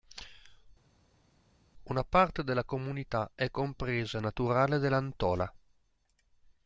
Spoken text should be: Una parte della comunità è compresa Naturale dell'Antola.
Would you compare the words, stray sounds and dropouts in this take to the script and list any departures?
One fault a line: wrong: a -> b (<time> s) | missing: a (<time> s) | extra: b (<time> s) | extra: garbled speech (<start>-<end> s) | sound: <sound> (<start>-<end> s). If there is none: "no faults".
no faults